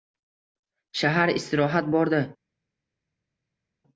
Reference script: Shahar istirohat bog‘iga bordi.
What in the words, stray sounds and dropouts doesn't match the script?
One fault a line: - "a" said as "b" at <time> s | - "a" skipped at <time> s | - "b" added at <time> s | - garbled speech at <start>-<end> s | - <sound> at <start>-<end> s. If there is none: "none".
- "bog‘iga" skipped at 1.9 s